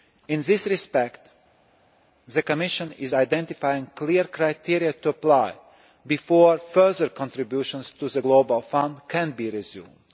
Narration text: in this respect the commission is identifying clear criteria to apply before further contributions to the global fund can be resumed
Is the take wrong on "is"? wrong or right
right